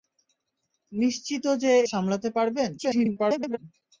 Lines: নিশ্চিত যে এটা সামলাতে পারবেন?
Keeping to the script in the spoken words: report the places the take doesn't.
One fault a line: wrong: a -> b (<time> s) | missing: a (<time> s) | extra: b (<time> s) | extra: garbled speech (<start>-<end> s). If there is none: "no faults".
missing: এটা (1.7 s)
extra: garbled speech (2.8-3.6 s)